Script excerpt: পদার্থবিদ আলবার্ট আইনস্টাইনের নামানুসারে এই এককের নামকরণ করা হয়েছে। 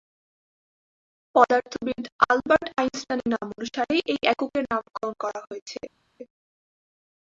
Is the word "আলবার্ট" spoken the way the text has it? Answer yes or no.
yes